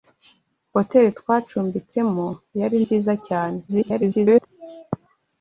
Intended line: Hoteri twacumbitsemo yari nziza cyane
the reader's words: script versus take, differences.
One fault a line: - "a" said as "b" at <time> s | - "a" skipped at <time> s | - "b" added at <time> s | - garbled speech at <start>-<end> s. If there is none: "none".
- garbled speech at 3.7-4.5 s